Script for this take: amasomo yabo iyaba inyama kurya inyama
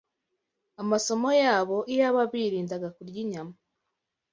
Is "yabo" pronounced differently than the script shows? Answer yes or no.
no